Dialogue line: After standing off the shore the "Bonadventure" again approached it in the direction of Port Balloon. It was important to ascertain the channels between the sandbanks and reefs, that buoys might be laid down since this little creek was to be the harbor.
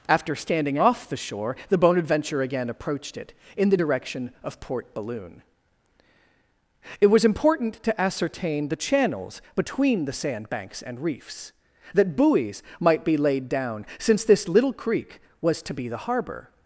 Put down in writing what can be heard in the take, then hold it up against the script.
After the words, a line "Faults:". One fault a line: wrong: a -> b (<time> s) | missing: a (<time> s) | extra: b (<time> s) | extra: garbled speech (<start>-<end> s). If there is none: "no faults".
After standing off the shore the "Bonadventure" again approached it in the direction of Port Balloon. It was important to ascertain the channels between the sandbanks and reefs, that buoys might be laid down since this little creek was to be the harbor.
Faults:
no faults